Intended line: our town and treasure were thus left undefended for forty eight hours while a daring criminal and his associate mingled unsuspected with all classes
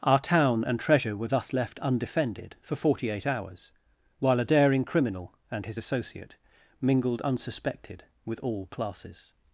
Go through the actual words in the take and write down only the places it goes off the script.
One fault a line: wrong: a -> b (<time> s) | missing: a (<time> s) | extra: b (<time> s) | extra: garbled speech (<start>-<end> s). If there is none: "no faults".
no faults